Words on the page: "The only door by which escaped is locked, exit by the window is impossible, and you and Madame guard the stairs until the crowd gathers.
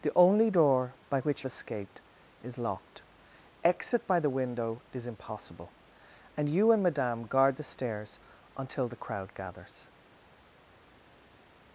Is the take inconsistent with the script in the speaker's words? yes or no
no